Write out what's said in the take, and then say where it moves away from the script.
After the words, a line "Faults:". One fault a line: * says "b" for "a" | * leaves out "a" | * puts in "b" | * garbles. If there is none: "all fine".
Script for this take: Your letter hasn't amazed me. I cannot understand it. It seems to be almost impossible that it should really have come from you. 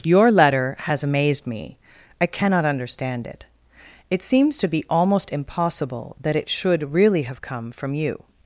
Your letter has amazed me. I cannot understand it. It seems to be almost impossible that it should really have come from you.
Faults:
* says "has" for "hasn't"